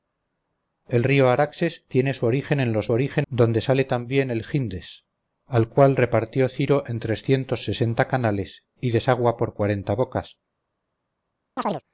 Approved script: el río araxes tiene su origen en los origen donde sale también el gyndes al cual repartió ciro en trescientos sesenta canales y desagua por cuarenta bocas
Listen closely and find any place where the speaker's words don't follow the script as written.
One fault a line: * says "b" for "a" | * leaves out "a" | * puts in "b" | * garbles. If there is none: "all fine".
all fine